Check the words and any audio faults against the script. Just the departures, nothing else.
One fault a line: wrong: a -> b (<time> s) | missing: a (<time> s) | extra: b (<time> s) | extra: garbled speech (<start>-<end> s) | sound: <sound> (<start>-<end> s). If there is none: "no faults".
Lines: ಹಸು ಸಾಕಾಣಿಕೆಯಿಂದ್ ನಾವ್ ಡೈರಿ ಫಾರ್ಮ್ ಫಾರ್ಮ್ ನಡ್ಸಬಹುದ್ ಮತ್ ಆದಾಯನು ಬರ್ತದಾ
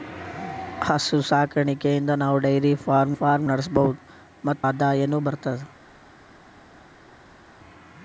no faults